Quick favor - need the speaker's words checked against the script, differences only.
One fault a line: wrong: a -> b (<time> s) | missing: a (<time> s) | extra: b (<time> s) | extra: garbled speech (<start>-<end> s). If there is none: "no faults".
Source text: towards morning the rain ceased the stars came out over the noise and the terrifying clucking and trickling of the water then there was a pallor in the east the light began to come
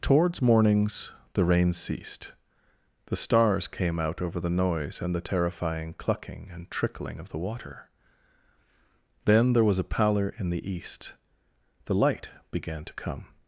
wrong: morning -> mornings (0.4 s)